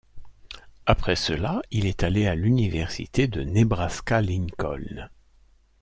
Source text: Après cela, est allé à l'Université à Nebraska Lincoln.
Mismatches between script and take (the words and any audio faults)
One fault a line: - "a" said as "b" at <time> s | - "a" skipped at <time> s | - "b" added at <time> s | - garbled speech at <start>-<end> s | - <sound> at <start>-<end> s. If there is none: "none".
- "il" added at 1.7 s
- "à" said as "de" at 3.3 s